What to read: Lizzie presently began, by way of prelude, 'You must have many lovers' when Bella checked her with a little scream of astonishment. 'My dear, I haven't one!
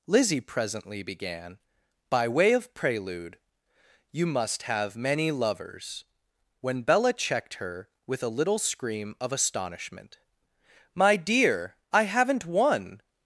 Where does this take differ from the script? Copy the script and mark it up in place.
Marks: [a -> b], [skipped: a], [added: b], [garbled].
Lizzie presently began, by way of prelude, 'You must have many lovers' when Bella checked her with a little scream of astonishment. 'My dear, I haven't one!